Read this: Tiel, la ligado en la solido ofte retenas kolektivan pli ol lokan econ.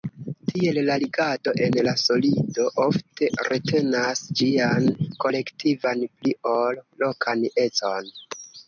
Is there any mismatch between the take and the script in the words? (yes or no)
yes